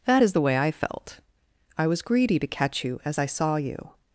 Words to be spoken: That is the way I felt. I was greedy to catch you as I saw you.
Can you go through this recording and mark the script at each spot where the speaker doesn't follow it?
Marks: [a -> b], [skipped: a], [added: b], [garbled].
That is the way I felt. I was greedy to catch you as I saw you.